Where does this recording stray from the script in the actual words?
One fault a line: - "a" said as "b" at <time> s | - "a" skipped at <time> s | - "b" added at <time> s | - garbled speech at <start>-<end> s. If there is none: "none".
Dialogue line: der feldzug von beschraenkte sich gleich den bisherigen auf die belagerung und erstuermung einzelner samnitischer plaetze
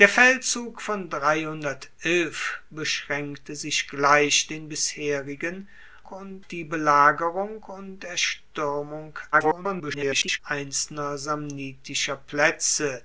- "auf" said as "und" at 6.1 s
- garbled speech at 9.3-10.4 s